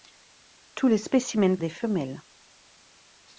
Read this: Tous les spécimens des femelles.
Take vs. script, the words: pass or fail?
pass